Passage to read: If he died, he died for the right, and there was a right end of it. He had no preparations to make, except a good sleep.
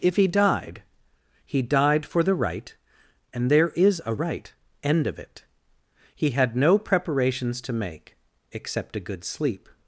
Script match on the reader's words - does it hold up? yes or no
no